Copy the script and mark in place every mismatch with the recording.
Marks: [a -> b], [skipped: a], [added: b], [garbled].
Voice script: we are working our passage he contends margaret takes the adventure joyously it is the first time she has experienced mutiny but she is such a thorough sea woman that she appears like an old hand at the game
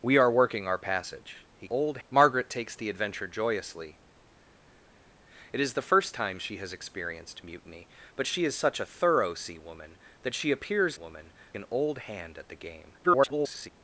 we are working our passage he [contends -> old] margaret takes the adventure joyously it is the first time she has experienced mutiny but she is such a thorough sea woman that she appears [like -> woman] an old hand at the game [garbled]